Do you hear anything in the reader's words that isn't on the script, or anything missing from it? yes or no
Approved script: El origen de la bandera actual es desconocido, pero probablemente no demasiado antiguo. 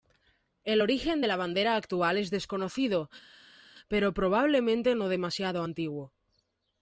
no